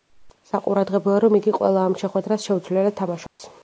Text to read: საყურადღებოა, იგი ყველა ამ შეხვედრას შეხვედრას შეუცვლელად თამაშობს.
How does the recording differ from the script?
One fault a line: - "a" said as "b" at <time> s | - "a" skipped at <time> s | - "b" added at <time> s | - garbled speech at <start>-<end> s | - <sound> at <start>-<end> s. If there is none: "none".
- "რომ" added at 1.2 s
- "შეხვედრას" skipped at 2.5 s
- dropout at 3.3-3.4 s